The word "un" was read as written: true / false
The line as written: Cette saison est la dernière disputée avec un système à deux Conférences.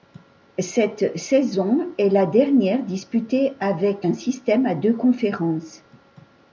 true